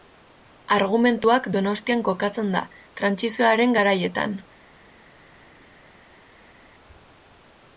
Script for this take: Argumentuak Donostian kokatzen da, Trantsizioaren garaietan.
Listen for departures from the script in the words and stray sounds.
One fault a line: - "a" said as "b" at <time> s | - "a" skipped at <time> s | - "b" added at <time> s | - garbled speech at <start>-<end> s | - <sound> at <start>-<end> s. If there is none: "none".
none